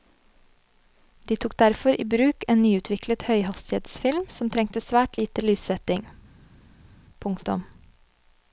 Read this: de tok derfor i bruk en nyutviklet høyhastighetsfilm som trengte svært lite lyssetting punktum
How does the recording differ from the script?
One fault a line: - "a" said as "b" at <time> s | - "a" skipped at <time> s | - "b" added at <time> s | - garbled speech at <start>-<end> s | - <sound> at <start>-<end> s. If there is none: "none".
none